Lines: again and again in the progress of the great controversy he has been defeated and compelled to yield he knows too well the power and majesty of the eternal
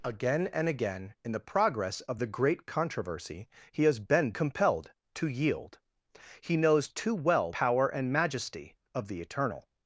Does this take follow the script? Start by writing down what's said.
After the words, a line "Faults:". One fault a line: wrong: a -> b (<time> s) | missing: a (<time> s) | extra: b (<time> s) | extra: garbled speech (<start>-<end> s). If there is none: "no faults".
again and again in the progress of the great controversy he has been compelled to yield he knows too well power and majesty of the eternal
Faults:
missing: defeated and (4.3 s)
missing: the (7.5 s)